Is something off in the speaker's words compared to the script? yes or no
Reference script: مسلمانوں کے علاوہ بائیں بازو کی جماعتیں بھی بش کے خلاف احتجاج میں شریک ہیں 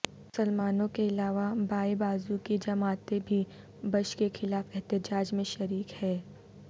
no